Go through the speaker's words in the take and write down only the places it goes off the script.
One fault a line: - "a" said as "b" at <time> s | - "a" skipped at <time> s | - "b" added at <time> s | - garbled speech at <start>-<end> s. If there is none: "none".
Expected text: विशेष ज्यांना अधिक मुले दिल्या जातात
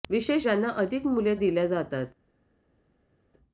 none